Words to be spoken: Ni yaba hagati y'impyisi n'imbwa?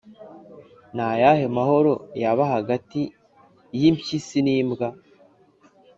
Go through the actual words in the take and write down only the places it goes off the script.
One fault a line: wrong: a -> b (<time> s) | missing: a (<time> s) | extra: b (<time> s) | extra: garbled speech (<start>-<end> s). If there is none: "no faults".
extra: ayahe mahoro (1.1 s)